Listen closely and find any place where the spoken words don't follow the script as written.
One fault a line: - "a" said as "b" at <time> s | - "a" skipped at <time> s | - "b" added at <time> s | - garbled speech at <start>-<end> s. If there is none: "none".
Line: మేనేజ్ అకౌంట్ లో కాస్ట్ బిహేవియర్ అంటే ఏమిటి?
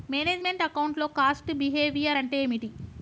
- "మెంట్" added at 0.4 s